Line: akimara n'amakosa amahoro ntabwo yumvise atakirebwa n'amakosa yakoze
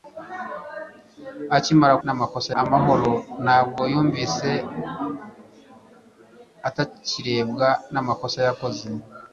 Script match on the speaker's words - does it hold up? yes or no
yes